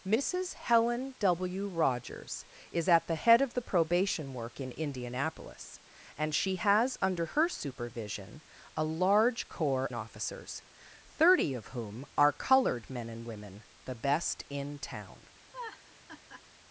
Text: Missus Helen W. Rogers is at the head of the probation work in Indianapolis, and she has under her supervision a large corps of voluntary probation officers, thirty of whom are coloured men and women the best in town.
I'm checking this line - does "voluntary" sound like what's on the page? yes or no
no